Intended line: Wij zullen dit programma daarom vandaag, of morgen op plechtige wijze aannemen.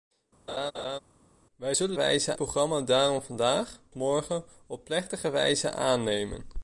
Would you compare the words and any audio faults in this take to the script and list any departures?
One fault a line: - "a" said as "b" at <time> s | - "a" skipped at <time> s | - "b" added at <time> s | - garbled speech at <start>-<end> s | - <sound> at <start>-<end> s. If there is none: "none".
- laugh at 0.5-1.0 s
- "dit" said as "wijze" at 1.9 s
- "of" skipped at 3.8 s